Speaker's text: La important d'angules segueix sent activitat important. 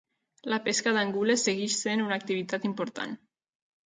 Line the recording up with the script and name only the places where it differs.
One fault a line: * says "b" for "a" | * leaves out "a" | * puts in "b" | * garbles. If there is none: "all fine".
* says "pesca" for "important"
* puts in "una"